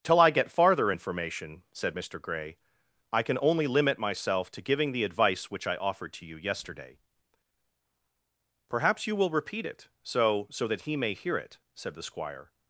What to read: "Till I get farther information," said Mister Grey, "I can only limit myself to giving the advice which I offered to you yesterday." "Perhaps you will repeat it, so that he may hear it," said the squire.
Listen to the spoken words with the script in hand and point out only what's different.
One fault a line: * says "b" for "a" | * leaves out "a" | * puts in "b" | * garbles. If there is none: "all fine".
* puts in "so"